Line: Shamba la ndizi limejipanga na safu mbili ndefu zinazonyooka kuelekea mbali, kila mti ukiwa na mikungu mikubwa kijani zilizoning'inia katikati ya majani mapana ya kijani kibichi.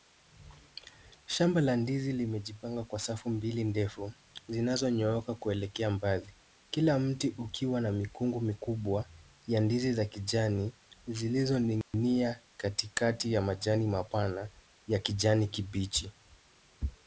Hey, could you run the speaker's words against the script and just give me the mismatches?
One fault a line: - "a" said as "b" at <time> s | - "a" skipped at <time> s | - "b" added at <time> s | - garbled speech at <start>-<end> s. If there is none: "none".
- "na" said as "kwa" at 2.8 s
- "ya ndizi za" added at 9.5 s